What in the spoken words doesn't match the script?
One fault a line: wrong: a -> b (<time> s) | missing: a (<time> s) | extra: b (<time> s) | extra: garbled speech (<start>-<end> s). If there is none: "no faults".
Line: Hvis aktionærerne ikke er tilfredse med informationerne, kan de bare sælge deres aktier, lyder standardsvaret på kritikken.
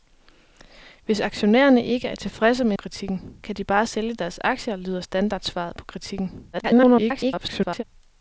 wrong: informationerne -> kritikken (2.7 s)
extra: garbled speech (6.5-7.8 s)